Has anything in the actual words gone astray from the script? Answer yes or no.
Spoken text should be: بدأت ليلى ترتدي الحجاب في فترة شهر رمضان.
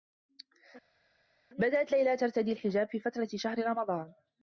no